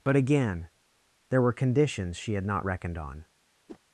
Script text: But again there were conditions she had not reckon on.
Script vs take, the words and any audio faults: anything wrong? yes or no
yes